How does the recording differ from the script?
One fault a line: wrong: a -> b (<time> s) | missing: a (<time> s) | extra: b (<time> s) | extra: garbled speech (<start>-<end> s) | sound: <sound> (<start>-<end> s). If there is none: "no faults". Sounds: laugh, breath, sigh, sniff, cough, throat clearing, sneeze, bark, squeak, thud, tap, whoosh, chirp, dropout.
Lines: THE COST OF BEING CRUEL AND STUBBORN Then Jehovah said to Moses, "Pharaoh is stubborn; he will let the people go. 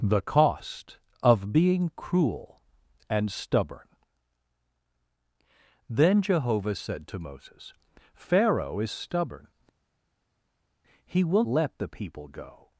no faults